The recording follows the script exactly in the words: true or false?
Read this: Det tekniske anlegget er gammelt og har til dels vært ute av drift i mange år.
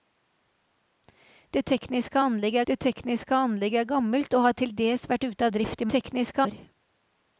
false